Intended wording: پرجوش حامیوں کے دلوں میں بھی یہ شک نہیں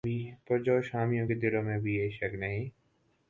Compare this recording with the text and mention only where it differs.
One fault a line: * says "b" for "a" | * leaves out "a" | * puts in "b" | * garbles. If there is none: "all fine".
all fine